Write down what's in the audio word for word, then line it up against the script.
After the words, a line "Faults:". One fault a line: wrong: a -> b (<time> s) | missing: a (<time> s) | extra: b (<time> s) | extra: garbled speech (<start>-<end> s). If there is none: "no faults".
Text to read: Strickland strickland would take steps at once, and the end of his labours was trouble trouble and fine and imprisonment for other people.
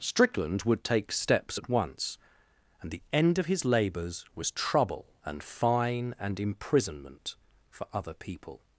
Strickland would take steps at once, and the end of his labours was trouble and fine and imprisonment for other people.
Faults:
missing: strickland (0.6 s)
missing: trouble (5.1 s)